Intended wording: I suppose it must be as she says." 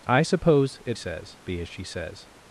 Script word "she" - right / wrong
right